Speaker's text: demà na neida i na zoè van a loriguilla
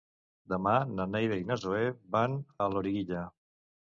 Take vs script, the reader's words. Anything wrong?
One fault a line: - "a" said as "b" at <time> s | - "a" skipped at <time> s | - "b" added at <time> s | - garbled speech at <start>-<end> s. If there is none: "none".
none